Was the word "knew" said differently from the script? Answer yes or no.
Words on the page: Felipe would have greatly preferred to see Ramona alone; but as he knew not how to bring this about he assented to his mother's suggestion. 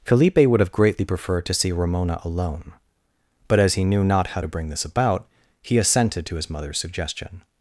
no